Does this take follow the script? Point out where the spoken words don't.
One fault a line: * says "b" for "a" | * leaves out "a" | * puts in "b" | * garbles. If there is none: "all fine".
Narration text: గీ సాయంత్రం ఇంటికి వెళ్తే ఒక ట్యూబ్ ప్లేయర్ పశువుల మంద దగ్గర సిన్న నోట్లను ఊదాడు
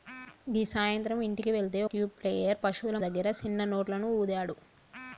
* leaves out "ఒక"
* leaves out "మంద"